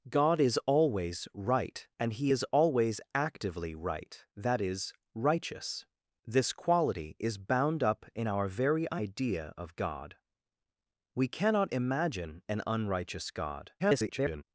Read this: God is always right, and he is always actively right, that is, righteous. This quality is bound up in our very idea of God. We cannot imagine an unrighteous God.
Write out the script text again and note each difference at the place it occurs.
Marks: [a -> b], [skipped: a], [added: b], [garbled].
God is always right, and he is always actively right, that is, righteous. This quality is bound up in our very idea of God. We cannot imagine an unrighteous God. [garbled]